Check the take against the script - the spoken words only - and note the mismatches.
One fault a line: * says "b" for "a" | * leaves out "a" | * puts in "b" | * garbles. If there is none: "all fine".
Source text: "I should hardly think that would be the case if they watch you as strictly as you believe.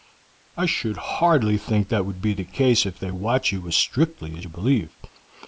all fine